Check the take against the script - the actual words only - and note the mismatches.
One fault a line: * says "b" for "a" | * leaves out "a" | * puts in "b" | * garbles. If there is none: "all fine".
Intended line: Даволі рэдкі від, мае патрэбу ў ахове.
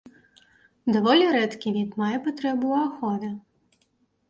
all fine